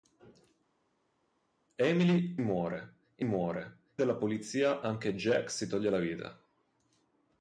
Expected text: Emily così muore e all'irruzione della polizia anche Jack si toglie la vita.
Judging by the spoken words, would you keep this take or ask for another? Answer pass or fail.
fail